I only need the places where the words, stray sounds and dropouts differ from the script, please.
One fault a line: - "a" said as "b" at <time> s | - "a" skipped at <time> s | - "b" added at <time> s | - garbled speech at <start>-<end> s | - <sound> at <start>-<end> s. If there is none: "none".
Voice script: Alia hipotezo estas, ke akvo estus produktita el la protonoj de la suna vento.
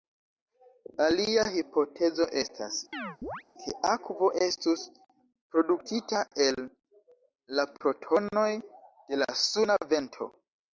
- chirp at 2.9-3.4 s